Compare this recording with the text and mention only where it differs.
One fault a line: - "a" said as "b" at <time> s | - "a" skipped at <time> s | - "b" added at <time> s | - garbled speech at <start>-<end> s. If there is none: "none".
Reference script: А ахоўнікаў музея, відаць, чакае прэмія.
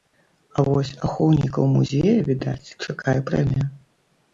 - "вось" added at 0.7 s